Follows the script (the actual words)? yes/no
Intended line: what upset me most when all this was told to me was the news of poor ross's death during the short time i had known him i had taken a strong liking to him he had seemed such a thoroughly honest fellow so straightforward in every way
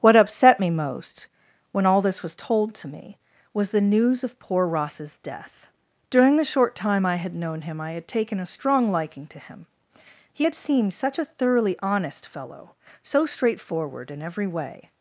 yes